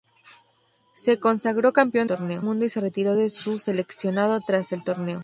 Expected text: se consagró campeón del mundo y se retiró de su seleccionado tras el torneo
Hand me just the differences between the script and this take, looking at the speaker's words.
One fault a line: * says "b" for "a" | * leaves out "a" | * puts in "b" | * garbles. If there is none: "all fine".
* says "torneo" for "del"